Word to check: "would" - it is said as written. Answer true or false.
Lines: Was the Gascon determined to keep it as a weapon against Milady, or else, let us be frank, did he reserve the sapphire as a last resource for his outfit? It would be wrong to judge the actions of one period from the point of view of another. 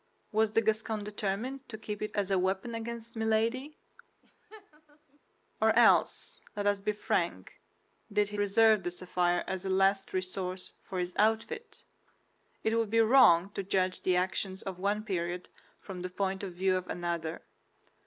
true